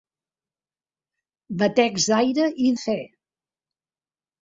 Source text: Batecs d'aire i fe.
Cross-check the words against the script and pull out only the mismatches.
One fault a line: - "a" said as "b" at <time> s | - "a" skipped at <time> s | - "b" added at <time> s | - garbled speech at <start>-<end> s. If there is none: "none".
none